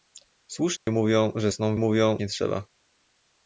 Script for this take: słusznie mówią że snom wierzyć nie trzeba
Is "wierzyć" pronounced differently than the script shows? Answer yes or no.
yes